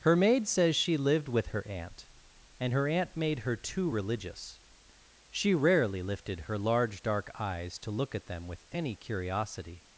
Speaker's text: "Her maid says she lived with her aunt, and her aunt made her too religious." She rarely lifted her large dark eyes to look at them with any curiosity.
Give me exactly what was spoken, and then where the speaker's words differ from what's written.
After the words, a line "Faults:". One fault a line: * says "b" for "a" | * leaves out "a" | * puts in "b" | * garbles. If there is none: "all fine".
"Her maid says she lived with her aunt, and her aunt made her too religious." She rarely lifted her large dark eyes to look at them with any curiosity.
Faults:
all fine